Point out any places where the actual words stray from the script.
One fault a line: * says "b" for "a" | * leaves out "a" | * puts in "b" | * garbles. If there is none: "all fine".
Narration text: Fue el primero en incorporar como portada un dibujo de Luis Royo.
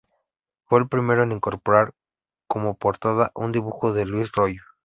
all fine